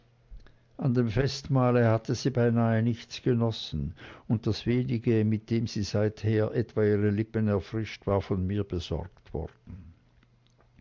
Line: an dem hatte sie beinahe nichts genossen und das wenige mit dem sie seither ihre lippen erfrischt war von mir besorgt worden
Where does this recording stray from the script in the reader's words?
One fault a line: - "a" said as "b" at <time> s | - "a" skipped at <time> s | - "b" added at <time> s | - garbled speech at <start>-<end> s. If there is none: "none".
- "festmahle" added at 1.1 s
- "etwa" added at 6.5 s